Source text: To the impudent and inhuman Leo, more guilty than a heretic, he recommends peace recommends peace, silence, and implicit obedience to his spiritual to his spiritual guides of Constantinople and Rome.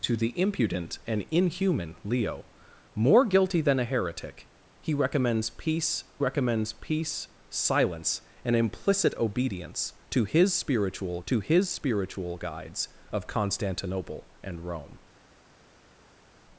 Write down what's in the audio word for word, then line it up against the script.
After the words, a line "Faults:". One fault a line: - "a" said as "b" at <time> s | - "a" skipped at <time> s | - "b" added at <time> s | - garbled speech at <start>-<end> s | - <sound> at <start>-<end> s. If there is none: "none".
To the impudent and inhuman Leo, more guilty than a heretic, he recommends peace recommends peace, silence, and implicit obedience to his spiritual to his spiritual guides of Constantinople and Rome.
Faults:
none